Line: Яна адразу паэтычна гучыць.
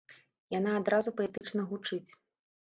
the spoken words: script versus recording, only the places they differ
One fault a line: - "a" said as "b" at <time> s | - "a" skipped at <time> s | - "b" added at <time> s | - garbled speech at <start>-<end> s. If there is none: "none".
none